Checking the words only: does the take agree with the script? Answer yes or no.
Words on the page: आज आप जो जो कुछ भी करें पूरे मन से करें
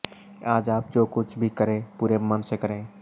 no